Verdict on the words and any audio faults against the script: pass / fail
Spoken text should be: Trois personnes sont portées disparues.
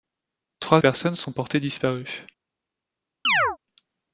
fail